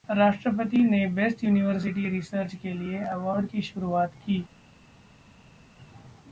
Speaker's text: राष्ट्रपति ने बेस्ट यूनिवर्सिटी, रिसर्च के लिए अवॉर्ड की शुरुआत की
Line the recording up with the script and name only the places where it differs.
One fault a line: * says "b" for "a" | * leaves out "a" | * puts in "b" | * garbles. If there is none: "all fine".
all fine